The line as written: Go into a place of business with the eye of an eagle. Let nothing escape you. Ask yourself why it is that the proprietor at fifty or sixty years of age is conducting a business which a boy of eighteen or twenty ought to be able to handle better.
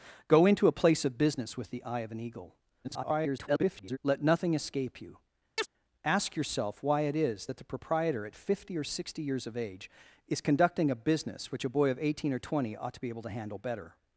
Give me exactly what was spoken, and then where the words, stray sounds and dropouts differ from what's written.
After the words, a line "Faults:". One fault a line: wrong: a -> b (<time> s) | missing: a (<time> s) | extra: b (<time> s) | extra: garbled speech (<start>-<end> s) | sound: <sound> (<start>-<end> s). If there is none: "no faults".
Go into a place of business with the eye of an eagle. [garbled] Let nothing escape you. Ask yourself why it is that the proprietor at fifty or sixty years of age is conducting a business which a boy of eighteen or twenty ought to be able to handle better.
Faults:
extra: garbled speech (2.8-4.0 s)
sound: chirp (5.6-5.7 s)